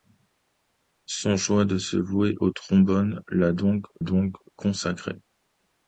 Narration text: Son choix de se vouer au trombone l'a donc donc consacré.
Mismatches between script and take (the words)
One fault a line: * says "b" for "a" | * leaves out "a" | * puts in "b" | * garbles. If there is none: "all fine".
all fine